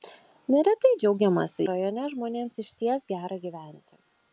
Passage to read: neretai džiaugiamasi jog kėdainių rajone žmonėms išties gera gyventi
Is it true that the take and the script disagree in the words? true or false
true